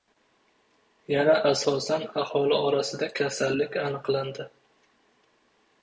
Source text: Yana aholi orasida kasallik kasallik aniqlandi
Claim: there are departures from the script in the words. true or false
true